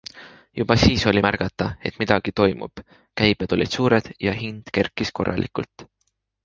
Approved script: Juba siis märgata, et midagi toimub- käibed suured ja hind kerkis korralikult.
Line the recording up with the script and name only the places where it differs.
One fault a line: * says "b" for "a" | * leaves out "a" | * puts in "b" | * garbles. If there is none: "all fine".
* puts in "oli"
* puts in "olid"